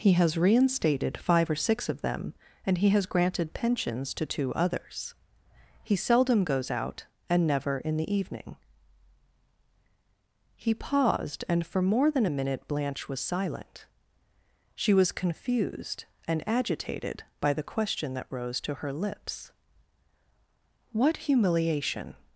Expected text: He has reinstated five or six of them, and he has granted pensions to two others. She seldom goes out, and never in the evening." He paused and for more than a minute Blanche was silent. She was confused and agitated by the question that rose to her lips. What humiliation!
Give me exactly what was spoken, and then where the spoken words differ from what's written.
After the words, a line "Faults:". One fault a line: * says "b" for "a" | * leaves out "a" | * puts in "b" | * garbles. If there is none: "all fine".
He has reinstated five or six of them, and he has granted pensions to two others. He seldom goes out, and never in the evening." He paused and for more than a minute Blanche was silent. She was confused and agitated by the question that rose to her lips. What humiliation!
Faults:
* says "He" for "She"